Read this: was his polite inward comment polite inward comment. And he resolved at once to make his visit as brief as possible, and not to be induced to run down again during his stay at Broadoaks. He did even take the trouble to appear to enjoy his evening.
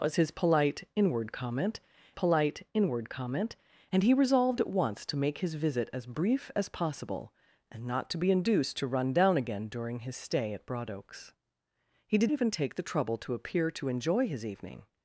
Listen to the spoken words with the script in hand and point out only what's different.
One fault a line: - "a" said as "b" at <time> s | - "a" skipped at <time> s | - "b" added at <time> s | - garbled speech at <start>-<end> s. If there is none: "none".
none